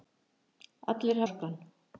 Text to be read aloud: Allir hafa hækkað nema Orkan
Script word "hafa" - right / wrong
wrong